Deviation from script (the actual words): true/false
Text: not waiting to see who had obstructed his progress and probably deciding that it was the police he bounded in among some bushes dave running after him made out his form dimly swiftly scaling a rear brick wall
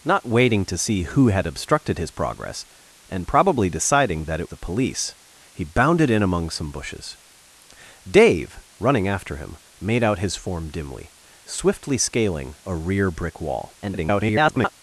true